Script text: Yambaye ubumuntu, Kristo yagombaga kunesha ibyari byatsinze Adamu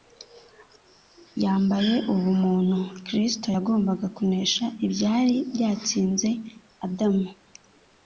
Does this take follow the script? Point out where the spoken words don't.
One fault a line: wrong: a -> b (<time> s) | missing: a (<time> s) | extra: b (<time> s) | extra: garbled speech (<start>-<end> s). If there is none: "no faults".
no faults